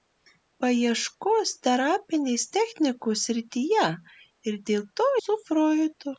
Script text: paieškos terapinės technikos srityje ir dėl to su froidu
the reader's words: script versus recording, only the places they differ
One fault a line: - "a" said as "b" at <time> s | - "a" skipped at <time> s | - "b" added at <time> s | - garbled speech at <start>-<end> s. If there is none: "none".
none